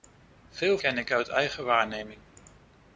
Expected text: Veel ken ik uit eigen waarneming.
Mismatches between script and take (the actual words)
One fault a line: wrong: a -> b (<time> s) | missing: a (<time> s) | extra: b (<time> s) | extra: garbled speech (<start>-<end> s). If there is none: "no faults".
no faults